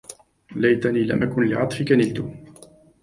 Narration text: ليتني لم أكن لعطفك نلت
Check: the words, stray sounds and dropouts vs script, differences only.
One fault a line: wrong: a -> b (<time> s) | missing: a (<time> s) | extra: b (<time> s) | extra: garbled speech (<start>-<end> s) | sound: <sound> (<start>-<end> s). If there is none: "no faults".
no faults